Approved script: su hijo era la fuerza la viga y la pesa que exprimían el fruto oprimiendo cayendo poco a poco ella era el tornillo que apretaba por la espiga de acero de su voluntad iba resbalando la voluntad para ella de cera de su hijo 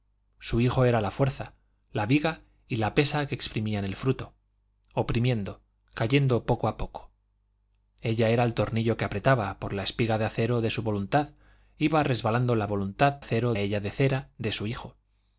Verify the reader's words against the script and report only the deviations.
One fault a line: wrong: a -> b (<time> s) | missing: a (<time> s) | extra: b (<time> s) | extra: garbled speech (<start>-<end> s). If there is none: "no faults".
wrong: para -> acero (13.2 s)